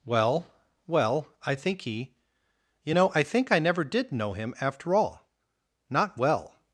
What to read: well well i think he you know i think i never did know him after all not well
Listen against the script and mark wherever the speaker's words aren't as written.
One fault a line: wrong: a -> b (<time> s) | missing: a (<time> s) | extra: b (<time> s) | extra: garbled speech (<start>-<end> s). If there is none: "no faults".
no faults